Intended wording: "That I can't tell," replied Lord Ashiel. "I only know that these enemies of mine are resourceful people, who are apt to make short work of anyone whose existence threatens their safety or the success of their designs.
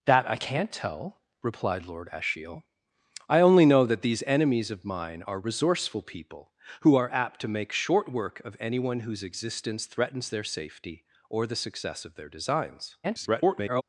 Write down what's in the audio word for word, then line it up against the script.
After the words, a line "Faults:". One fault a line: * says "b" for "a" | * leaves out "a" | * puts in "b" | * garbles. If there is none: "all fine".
"That I can't tell," replied Lord Ashiel. "I only know that these enemies of mine are resourceful people, who are apt to make short work of anyone whose existence threatens their safety or the success of their designs. [garbled]
Faults:
* garbles